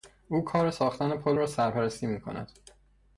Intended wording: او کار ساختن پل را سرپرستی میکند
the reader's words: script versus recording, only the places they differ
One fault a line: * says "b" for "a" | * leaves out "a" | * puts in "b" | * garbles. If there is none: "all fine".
all fine